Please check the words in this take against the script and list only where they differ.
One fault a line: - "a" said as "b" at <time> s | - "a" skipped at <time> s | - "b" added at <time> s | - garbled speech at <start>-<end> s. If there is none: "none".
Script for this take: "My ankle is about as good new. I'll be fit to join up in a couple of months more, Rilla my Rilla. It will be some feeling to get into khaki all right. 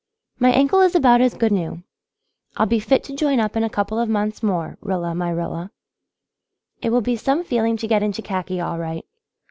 none